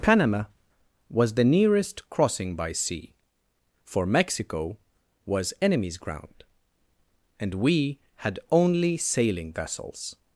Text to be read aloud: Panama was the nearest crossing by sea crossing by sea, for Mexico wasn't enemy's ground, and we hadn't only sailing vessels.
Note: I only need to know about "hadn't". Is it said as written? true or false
false